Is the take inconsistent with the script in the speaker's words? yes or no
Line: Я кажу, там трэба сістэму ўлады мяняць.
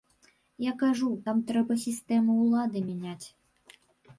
no